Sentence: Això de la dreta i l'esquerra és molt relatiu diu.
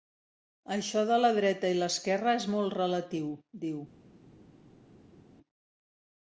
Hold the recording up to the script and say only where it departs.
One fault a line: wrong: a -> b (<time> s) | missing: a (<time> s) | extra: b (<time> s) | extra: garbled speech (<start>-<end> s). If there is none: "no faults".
no faults